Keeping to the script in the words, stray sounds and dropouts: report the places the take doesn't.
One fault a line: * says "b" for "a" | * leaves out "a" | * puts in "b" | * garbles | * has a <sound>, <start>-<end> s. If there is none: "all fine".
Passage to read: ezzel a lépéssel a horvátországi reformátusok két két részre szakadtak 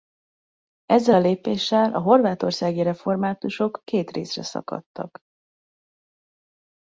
* leaves out "két"